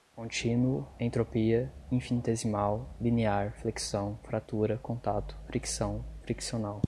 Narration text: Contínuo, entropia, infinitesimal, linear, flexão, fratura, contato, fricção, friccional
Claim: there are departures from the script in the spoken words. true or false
false